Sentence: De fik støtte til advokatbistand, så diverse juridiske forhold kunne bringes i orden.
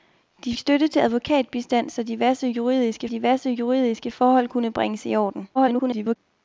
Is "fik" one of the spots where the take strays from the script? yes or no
yes